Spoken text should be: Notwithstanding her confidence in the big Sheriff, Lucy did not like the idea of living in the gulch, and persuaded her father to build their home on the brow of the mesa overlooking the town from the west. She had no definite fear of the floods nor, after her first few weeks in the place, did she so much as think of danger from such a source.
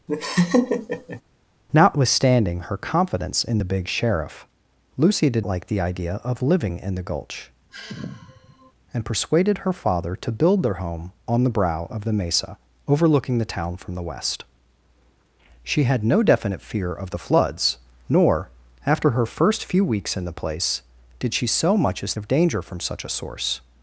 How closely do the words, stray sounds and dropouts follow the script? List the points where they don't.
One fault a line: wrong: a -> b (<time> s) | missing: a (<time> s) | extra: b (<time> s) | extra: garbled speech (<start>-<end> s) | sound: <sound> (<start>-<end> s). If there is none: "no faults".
sound: laugh (0.1-1.2 s)
missing: not (5.4 s)
sound: sigh (7.7-8.7 s)
missing: think (22.1 s)